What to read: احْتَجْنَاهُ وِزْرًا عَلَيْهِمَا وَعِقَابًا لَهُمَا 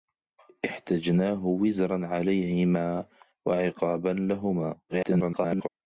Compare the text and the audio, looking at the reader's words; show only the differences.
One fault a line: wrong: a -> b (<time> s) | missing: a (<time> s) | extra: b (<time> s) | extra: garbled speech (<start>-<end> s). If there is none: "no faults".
extra: garbled speech (4.9-5.7 s)